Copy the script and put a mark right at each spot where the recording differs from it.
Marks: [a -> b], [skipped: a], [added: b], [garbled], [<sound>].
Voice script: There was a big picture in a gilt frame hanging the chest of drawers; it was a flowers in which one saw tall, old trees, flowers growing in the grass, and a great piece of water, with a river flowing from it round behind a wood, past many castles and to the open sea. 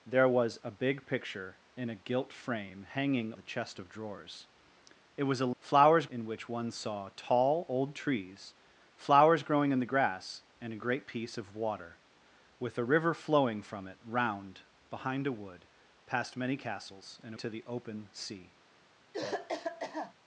There was a big picture in a gilt frame hanging the chest of drawers; it was a flowers in which one saw tall, old trees, flowers growing in the grass, and a great piece of water, with a river flowing from it round behind a wood, past many castles and to the open sea. [cough]